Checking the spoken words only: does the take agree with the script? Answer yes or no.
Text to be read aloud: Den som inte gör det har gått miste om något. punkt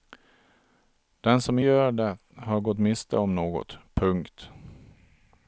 no